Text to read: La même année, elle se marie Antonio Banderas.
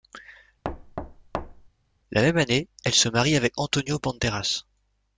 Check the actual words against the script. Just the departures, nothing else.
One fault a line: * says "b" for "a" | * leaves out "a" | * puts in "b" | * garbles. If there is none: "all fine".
* puts in "avec"